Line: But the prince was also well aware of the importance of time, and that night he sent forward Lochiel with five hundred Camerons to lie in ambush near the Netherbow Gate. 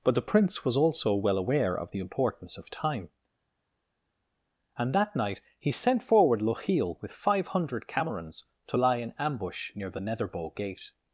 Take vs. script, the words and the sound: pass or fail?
pass